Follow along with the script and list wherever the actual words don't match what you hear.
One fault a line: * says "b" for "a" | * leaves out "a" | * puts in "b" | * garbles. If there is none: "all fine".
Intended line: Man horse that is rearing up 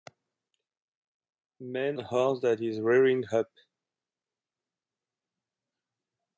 all fine